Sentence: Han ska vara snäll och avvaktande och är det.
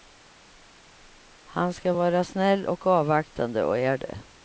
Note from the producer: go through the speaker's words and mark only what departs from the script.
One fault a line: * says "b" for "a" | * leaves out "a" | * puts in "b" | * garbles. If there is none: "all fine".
all fine